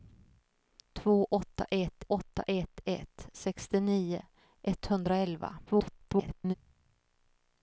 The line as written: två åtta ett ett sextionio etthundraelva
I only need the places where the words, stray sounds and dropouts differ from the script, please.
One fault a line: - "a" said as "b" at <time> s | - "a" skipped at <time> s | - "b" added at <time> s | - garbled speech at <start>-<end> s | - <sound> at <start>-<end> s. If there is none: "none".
- "åtta ett" added at 2.1 s
- garbled speech at 5.7-6.5 s